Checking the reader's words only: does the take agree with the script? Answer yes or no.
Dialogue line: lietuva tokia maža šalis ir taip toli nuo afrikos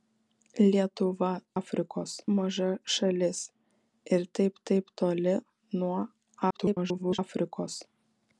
no